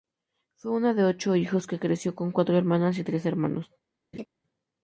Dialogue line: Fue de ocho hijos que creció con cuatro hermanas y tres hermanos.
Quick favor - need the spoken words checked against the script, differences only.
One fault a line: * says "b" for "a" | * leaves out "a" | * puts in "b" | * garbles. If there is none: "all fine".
* puts in "una"